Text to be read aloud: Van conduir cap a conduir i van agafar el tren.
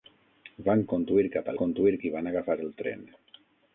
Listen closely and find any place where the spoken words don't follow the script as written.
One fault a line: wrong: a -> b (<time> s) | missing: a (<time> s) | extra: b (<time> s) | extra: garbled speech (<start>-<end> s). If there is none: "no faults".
no faults